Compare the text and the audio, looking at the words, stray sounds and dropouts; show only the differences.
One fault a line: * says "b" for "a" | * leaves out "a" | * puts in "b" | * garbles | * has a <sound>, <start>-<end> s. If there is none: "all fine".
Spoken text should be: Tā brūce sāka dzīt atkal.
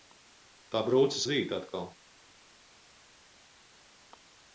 * leaves out "sāka"